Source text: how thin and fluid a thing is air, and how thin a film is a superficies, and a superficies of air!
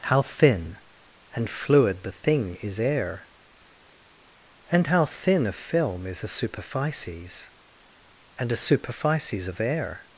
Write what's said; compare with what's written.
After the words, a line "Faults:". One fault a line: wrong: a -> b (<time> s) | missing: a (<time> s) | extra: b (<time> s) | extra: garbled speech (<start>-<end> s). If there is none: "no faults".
how thin and fluid the thing is air, and how thin a film is a superficies, and a superficies of air!
Faults:
wrong: a -> the (2.0 s)